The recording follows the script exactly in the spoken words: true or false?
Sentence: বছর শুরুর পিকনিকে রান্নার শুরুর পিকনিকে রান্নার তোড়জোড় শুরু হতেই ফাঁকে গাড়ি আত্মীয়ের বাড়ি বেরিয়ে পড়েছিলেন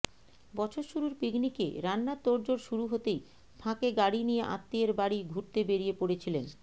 false